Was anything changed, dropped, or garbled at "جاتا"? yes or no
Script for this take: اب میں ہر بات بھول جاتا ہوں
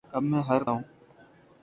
yes